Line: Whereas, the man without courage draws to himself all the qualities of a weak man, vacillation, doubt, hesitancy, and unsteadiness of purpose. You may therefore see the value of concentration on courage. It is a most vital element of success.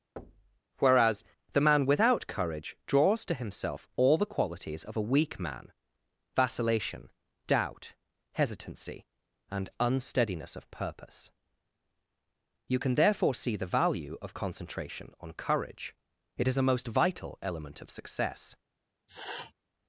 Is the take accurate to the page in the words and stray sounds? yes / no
no